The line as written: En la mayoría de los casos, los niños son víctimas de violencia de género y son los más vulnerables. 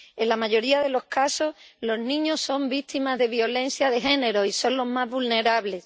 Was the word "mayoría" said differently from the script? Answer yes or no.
no